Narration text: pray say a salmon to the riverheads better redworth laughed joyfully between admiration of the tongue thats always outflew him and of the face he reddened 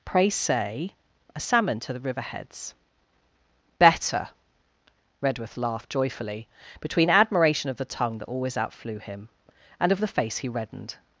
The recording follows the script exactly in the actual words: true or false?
false